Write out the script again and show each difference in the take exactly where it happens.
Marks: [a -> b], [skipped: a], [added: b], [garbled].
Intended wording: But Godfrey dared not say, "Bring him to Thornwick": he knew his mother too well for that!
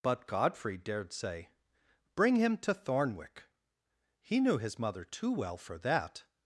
But Godfrey dared [skipped: not] say, "Bring him to Thornwick": he knew his mother too well for that!